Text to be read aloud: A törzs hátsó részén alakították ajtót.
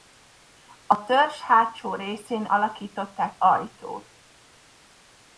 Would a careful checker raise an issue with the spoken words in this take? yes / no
no